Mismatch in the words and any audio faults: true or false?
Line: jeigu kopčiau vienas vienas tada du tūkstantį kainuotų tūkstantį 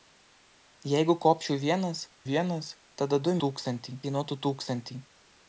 false